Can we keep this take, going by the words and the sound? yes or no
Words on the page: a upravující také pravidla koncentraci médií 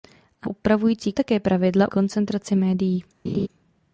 no